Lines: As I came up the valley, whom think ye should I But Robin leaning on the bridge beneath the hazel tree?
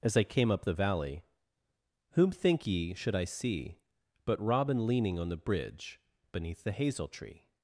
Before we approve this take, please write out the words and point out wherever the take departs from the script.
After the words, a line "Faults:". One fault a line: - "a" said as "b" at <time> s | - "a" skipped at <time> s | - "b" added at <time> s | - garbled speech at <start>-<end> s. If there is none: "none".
As I came up the valley, whom think ye should I see But Robin leaning on the bridge beneath the hazel tree?
Faults:
- "see" added at 3.3 s